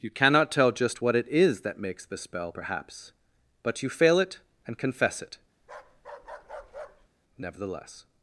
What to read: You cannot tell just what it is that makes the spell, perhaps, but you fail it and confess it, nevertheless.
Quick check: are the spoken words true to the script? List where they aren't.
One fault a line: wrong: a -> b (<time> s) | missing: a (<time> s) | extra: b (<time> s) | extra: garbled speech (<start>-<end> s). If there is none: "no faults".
no faults